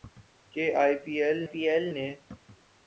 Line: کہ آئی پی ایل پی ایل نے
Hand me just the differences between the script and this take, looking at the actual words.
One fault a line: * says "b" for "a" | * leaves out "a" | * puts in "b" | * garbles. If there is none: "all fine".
all fine